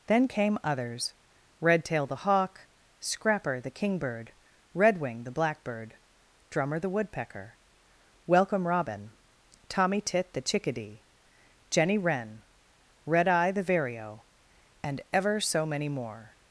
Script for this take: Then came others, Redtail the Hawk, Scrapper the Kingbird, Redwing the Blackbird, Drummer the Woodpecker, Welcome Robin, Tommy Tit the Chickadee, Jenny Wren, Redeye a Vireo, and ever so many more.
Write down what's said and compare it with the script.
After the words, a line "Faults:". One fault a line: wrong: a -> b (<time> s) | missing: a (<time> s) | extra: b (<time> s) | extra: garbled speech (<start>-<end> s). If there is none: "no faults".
Then came others, Redtail the Hawk, Scrapper the Kingbird, Redwing the Blackbird, Drummer the Woodpecker, Welcome Robin, Tommy Tit the Chickadee, Jenny Wren, Redeye the Vireo, and ever so many more.
Faults:
wrong: a -> the (13.5 s)